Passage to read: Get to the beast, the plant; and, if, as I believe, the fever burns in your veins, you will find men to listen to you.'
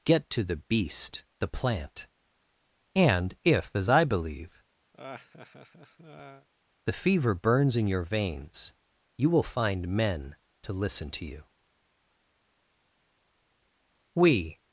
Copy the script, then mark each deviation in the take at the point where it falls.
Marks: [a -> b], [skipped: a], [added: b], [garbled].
Get to the beast, the plant; and, if, as I believe, the fever burns in your veins, you will find men to listen to you.' [added: We]